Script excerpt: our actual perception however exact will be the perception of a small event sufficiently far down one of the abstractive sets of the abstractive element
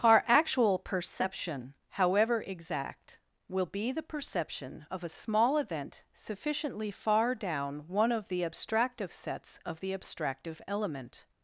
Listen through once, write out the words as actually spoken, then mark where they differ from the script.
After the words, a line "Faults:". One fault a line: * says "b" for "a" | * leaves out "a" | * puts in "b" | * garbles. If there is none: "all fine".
our actual perception however exact will be the perception of a small event sufficiently far down one of the abstractive sets of the abstractive element
Faults:
all fine